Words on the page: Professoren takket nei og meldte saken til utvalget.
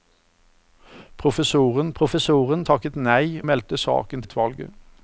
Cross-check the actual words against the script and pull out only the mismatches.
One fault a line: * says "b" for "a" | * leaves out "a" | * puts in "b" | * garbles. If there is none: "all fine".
* puts in "professoren"
* leaves out "og"
* leaves out "til"